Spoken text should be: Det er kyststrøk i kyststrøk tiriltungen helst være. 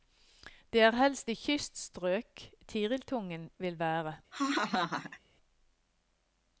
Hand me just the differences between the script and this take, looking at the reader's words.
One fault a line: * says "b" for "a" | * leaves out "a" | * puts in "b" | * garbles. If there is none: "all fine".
* says "helst" for "kyststrøk"
* says "vil" for "helst"